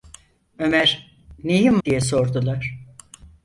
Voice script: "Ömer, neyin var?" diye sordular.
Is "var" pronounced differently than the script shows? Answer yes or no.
yes